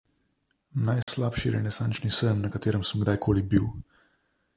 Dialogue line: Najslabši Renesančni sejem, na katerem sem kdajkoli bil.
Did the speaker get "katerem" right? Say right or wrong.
right